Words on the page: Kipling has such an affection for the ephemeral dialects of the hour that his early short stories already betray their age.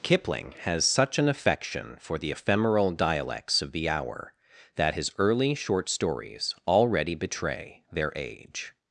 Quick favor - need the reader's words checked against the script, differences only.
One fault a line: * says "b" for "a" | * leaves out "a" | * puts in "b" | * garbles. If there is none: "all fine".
all fine